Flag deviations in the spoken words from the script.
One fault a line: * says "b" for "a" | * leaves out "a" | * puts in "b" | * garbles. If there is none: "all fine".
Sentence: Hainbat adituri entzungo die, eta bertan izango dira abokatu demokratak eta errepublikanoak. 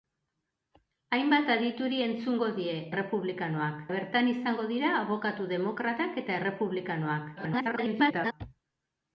* says "errepublikanoak" for "eta"
* garbles